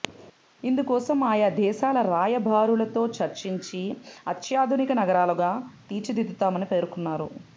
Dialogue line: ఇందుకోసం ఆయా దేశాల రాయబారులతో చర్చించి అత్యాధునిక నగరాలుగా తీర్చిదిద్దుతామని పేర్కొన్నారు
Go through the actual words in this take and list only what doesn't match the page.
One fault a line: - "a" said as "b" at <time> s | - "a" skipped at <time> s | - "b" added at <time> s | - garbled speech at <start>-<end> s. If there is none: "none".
none